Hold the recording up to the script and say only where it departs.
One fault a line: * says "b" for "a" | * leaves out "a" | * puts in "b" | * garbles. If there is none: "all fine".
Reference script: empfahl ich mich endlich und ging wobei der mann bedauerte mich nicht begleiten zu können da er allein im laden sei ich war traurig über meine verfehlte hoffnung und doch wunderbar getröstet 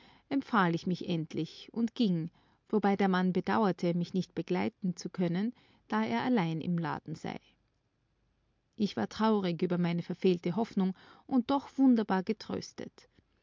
all fine